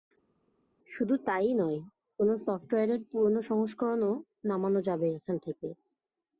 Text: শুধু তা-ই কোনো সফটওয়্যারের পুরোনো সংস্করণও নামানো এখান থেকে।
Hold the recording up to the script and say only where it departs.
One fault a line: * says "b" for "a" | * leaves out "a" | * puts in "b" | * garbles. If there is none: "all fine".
* puts in "নয়"
* puts in "যাবে"